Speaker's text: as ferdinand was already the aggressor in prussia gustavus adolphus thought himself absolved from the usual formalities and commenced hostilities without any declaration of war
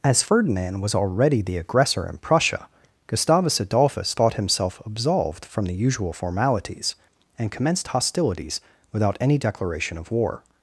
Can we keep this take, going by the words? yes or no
yes